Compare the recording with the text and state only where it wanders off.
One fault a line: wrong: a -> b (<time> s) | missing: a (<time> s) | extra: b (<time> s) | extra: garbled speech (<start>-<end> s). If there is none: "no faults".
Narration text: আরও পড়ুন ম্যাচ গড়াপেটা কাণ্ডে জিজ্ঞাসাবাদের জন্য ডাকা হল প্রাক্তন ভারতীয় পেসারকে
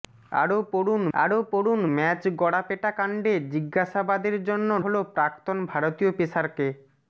extra: আরও পড়ুন (1.1 s)
missing: ডাকা (4.7 s)